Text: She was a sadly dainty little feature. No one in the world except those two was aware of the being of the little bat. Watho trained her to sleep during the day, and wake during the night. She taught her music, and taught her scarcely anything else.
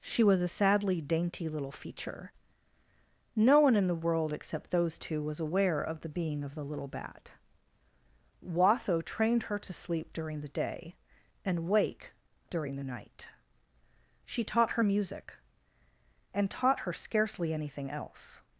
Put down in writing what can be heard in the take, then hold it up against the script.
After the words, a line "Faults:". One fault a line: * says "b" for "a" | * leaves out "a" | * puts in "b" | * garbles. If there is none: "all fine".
She was a sadly dainty little feature. No one in the world except those two was aware of the being of the little bat. Watho trained her to sleep during the day, and wake during the night. She taught her music, and taught her scarcely anything else.
Faults:
all fine